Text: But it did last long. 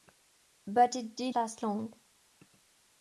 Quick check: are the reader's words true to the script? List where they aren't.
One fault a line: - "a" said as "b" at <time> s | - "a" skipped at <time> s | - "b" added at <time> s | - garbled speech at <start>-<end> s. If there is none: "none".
none